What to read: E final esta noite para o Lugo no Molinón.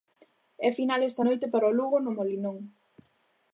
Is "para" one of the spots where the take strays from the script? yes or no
no